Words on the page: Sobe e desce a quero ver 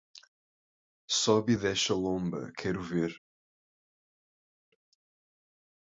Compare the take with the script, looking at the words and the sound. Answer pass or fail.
fail